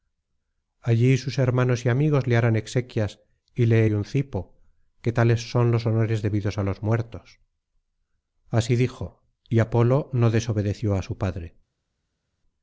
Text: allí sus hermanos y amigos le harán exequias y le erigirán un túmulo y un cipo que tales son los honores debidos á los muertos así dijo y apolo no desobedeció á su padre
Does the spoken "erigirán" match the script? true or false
false